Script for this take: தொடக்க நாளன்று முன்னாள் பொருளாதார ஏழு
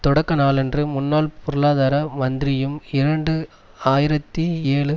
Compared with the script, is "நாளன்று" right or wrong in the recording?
right